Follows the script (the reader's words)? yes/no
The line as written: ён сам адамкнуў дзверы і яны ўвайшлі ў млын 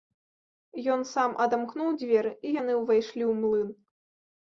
yes